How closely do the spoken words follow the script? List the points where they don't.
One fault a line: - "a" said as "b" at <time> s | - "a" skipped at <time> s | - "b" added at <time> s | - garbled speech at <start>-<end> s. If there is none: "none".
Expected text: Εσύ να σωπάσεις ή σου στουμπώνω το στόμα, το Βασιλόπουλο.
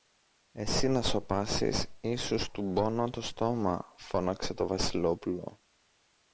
- "φώναξε" added at 4.0 s